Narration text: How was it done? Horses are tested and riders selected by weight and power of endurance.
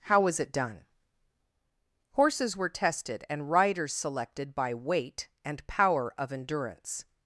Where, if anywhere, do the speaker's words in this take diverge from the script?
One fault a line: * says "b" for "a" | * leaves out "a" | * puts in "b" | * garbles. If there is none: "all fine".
* says "were" for "are"